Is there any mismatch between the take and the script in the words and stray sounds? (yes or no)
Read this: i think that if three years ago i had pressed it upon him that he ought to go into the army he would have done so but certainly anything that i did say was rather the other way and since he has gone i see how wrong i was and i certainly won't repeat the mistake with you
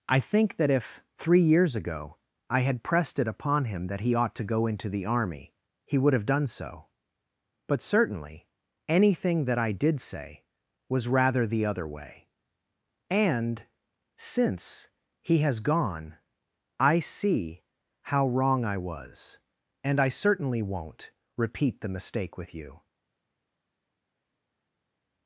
no